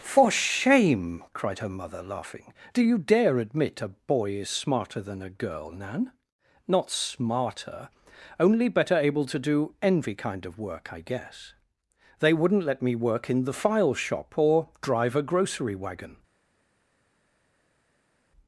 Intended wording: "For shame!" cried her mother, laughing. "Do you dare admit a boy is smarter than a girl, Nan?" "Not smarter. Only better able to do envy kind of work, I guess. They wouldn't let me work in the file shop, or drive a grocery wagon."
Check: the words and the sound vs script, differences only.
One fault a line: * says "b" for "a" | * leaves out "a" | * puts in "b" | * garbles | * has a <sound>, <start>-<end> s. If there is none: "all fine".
all fine